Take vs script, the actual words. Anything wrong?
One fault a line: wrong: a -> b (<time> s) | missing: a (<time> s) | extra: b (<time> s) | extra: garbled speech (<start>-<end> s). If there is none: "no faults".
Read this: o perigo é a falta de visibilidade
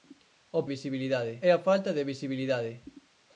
wrong: perigo -> visibilidade (0.7 s)